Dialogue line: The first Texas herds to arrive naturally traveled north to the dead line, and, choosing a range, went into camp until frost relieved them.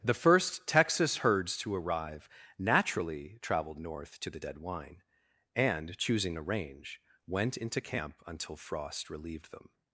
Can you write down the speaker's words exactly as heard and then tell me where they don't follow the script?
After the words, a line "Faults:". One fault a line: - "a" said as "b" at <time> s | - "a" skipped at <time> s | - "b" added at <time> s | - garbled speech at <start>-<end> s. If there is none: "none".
The first Texas herds to arrive naturally traveled north to the dead wine, and, choosing a range, went into camp until frost relieved them.
Faults:
- "line" said as "wine" at 4.6 s